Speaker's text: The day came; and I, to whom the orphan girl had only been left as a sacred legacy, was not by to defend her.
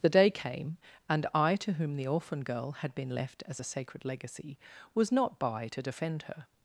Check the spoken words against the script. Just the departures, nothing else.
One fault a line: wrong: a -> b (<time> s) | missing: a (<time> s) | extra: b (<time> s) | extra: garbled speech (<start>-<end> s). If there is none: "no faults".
missing: only (3.0 s)